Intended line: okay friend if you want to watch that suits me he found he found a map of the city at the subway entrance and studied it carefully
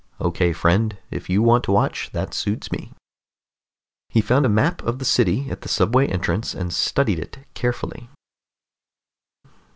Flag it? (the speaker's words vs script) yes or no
yes